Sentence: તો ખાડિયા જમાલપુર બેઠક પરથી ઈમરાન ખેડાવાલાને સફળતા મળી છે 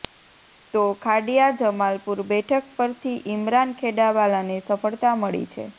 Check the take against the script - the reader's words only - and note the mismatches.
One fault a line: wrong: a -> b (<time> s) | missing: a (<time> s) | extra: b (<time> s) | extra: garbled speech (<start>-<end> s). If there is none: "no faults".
no faults